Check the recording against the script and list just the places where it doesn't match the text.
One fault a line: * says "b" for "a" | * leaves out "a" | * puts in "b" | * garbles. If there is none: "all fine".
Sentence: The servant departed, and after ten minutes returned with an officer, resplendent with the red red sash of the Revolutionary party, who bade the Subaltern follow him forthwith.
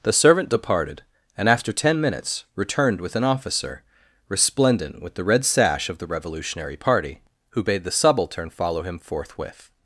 * leaves out "red"